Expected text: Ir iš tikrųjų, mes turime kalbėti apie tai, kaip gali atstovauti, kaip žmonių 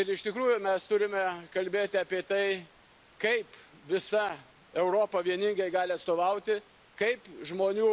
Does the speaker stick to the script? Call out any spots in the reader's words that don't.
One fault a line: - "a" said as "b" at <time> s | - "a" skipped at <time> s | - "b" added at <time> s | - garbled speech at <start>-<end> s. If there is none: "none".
- "visa Europa vieningai" added at 3.9 s